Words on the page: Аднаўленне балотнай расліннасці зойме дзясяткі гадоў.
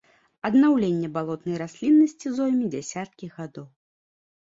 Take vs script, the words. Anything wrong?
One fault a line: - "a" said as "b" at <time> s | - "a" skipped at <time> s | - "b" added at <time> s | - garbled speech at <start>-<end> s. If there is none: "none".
none